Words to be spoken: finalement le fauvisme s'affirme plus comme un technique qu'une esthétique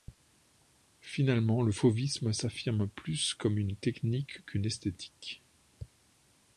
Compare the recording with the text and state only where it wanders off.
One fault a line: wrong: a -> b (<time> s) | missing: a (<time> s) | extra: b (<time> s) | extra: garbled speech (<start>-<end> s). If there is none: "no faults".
wrong: un -> une (3.6 s)